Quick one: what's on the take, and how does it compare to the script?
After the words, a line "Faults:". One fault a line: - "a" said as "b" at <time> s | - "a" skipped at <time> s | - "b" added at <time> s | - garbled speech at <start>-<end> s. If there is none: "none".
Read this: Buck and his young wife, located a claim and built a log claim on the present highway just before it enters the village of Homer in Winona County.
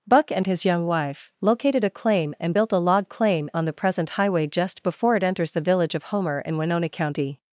Buck and his young wife, located a claim and built a log claim on the present highway just before it enters the village of Homer in Winona County.
Faults:
none